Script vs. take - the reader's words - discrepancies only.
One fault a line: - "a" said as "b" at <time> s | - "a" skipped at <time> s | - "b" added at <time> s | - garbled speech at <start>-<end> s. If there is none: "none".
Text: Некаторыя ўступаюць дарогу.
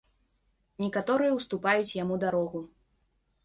- "яму" added at 2.0 s